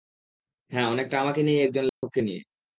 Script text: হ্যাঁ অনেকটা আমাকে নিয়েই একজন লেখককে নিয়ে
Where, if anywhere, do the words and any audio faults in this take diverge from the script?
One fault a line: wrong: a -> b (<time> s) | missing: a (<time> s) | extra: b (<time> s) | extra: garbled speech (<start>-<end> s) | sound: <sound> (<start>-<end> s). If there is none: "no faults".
sound: dropout (1.9-2.0 s)